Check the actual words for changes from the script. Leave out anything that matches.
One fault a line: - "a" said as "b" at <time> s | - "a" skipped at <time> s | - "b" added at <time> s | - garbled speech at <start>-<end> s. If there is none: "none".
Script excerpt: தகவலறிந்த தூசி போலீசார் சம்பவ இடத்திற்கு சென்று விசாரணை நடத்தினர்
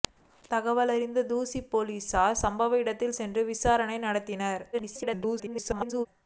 - garbled speech at 4.7-6.1 s